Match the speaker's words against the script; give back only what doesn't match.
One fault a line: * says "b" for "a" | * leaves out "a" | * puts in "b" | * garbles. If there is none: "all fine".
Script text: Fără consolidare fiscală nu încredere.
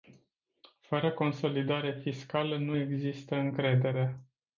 * puts in "există"